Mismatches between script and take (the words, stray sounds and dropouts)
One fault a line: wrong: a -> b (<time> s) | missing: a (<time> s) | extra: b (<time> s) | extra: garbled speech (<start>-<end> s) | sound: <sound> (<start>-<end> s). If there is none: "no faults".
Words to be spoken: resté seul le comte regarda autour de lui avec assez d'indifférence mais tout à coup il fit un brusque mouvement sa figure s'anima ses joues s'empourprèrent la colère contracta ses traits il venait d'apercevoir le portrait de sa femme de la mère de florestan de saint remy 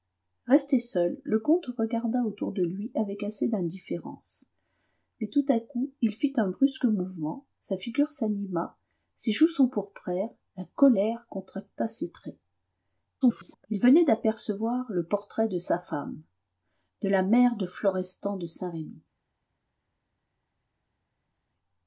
extra: garbled speech (13.2-13.7 s)